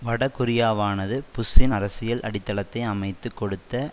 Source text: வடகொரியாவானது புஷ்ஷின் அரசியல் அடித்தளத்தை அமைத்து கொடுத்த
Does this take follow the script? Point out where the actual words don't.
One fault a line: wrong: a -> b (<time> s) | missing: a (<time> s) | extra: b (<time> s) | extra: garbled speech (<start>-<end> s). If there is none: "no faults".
no faults